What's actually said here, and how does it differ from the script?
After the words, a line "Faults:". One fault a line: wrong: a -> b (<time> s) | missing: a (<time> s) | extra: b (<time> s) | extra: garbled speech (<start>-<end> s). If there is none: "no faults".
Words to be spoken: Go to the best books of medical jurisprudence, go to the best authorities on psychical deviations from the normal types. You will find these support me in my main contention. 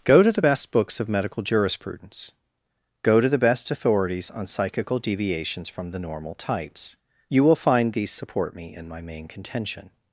Go to the best books of medical jurisprudence, go to the best authorities on psychical deviations from the normal types. You will find these support me in my main contention.
Faults:
no faults